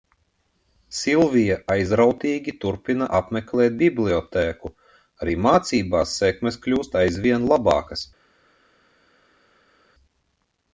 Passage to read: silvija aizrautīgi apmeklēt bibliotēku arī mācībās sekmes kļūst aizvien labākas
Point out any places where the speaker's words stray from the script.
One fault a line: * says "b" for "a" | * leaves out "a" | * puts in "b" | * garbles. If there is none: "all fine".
* puts in "turpina"